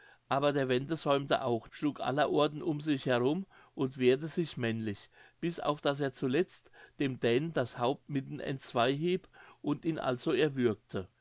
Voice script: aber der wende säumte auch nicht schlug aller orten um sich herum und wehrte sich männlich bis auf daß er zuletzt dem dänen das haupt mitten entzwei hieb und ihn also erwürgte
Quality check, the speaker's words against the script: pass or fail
fail